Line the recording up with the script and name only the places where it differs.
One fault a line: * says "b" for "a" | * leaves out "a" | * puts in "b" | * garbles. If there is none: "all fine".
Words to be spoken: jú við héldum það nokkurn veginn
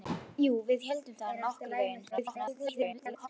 * garbles